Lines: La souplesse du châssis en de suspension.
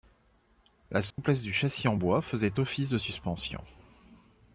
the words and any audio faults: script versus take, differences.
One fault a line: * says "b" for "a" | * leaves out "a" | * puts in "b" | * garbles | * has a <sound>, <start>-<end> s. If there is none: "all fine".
* has a dropout, 1.1-1.2 s
* puts in "bois faisait office"